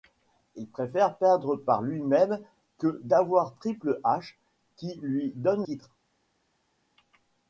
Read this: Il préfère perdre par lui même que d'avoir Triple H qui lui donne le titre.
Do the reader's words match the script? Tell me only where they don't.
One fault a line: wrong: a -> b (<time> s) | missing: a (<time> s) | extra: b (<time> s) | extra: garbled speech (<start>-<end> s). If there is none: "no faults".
missing: le (5.7 s)